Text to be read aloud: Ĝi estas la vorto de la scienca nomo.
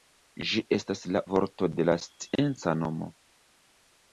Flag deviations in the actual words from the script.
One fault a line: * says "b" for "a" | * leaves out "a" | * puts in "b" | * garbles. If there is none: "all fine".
all fine